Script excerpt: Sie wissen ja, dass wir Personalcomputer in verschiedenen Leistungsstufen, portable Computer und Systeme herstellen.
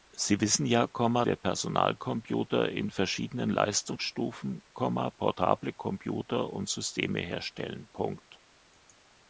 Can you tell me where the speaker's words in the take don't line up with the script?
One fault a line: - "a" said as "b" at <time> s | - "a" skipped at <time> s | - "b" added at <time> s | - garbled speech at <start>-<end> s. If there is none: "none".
- "dass" skipped at 0.9 s